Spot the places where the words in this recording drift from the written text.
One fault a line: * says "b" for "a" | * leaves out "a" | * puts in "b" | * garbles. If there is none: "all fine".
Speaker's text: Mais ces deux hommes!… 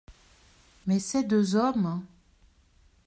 all fine